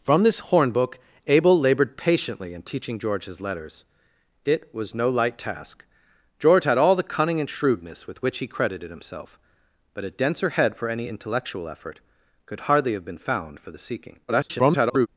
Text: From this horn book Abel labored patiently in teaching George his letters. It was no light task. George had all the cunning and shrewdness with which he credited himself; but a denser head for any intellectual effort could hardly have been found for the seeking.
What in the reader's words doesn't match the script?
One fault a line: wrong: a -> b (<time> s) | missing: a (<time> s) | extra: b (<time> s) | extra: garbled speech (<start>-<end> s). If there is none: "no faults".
extra: garbled speech (14.3-15.1 s)